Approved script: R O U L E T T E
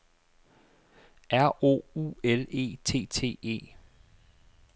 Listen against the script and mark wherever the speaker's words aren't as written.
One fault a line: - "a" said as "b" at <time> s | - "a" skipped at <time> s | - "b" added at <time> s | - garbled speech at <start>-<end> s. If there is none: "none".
none